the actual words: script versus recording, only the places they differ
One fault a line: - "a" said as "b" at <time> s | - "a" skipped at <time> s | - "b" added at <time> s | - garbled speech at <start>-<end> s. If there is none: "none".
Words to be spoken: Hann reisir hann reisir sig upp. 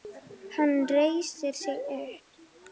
- "hann reisir" skipped at 1.5 s